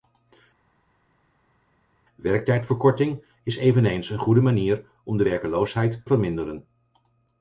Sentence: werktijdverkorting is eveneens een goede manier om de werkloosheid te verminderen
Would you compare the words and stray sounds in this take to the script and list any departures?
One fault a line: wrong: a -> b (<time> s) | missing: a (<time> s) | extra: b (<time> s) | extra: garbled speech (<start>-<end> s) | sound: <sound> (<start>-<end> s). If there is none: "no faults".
missing: te (6.0 s)